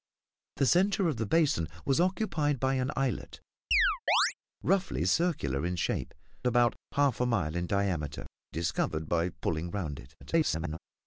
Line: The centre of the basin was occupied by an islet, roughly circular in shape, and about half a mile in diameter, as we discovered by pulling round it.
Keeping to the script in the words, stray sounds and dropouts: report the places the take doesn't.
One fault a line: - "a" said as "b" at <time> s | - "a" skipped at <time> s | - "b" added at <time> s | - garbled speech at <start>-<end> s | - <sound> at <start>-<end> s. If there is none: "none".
- chirp at 3.7-4.3 s
- "and" skipped at 6.1 s
- "as we" skipped at 8.3 s
- garbled speech at 10.2-10.8 s